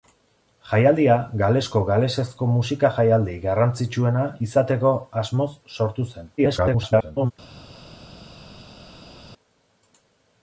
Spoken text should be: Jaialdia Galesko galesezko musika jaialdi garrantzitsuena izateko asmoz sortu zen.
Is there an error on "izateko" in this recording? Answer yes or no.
no